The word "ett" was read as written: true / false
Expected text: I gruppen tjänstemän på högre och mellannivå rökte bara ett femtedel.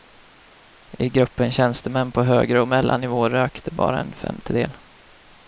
false